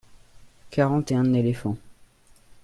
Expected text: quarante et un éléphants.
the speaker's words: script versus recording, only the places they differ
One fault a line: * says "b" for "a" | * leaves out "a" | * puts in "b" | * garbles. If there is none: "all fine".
all fine